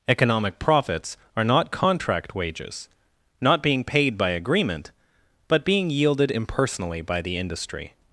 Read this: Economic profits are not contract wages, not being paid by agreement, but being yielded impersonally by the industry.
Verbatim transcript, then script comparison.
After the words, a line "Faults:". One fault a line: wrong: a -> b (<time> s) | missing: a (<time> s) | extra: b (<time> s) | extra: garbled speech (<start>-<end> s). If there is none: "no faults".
Economic profits are not contract wages, not being paid by agreement, but being yielded impersonally by the industry.
Faults:
no faults